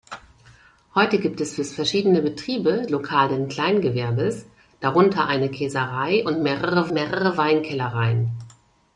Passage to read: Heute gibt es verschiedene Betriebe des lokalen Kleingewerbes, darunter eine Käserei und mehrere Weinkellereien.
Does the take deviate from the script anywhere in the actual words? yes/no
yes